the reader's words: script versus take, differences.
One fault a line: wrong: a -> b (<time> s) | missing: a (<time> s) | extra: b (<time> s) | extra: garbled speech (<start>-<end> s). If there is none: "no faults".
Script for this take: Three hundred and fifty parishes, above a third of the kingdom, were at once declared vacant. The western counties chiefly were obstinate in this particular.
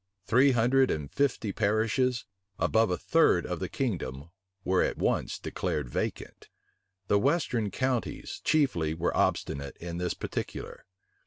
no faults